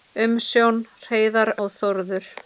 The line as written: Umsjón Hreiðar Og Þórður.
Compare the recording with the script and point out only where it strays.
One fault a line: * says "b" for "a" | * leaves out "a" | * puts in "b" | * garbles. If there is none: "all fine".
all fine